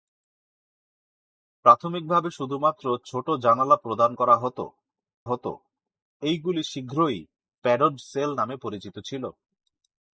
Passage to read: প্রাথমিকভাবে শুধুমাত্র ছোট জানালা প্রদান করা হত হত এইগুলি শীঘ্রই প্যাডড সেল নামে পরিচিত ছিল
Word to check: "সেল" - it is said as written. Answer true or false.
true